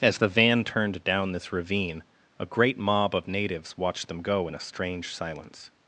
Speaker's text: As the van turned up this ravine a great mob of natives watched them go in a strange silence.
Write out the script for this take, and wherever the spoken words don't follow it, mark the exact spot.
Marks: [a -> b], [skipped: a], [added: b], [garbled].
As the van turned [up -> down] this ravine a great mob of natives watched them go in a strange silence.